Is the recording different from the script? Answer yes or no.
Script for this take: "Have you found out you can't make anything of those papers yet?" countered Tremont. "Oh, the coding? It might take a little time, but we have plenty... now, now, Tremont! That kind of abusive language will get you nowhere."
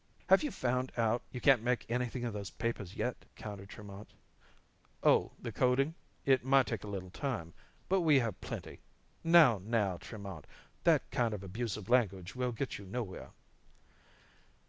no